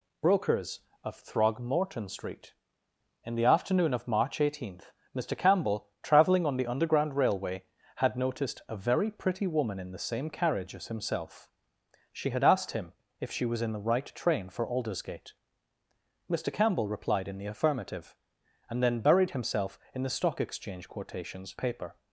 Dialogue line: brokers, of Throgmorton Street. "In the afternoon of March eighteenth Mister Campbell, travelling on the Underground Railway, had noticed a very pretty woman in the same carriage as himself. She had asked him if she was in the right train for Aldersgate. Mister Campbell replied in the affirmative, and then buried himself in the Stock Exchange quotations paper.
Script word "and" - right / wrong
right